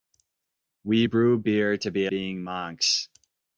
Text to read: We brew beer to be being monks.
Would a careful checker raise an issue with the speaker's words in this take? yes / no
no